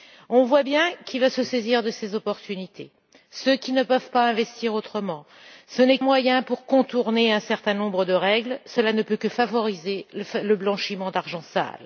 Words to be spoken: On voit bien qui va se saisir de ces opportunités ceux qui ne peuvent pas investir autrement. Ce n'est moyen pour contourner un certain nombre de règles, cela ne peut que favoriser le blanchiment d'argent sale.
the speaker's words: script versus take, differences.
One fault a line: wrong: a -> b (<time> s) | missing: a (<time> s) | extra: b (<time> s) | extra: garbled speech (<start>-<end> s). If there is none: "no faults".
no faults